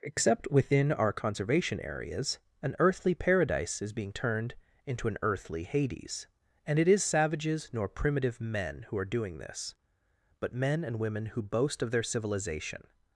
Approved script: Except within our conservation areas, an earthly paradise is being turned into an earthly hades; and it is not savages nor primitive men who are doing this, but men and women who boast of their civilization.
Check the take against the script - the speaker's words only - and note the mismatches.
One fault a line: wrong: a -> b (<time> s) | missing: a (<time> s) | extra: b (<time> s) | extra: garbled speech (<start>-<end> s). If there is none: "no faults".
missing: not (7.0 s)